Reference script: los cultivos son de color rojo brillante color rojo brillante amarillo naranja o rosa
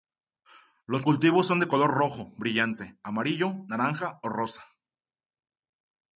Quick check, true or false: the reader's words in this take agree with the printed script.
false